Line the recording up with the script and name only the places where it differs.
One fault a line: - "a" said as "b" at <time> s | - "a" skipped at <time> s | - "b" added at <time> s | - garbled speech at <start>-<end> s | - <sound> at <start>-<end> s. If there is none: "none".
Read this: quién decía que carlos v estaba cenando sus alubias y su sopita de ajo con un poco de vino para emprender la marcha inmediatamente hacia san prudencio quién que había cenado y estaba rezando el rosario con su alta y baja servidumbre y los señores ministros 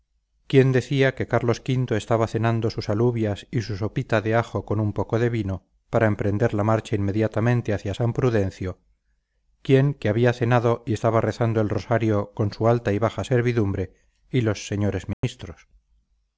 - dropout at 15.1-15.2 s